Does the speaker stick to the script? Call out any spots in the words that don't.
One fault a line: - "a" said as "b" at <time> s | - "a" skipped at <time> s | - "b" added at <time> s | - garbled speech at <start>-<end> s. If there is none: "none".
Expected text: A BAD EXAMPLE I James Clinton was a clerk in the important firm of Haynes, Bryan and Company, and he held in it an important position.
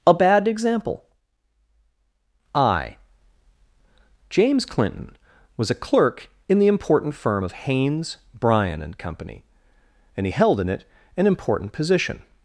none